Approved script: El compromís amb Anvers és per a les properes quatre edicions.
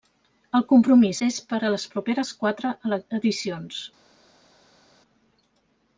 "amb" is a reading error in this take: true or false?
true